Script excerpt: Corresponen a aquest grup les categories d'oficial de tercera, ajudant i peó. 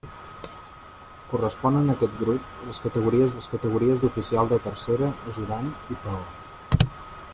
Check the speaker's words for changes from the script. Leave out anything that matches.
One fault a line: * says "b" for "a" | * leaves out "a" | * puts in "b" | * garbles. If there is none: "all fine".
* puts in "les categories"